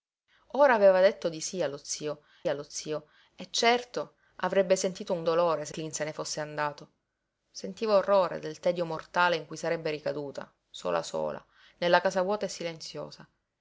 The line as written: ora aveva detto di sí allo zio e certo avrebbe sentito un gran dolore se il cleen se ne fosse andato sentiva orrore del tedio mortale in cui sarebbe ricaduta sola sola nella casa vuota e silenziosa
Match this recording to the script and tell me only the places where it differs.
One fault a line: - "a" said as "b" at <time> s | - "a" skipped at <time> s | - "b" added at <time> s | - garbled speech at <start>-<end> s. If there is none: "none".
- "allo zio" added at 2.5 s
- "gran" skipped at 5.2 s
- "il" skipped at 5.7 s